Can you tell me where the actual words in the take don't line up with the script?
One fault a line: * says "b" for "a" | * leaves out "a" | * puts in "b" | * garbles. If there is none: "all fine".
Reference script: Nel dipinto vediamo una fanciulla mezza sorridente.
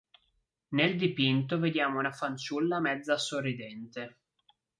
all fine